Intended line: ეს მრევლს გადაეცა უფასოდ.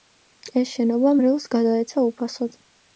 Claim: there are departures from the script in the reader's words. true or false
true